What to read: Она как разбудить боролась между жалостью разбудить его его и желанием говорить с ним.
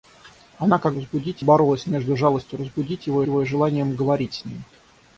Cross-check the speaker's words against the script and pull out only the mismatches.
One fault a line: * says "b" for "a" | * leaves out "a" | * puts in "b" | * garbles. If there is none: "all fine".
all fine